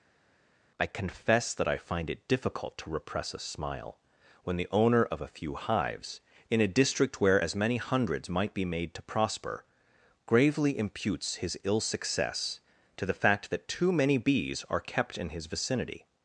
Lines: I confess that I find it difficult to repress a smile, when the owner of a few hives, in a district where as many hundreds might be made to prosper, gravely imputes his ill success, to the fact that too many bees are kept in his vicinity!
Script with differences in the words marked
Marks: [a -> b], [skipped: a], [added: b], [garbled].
I confess that I find it difficult to repress a smile, when the owner of a few hives, in a district where as many hundreds might be made to prosper, gravely imputes his ill success, to the fact that too many bees are kept in his vicinity!